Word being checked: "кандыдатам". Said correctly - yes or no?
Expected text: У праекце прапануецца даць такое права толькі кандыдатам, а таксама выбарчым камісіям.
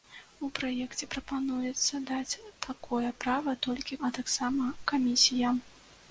no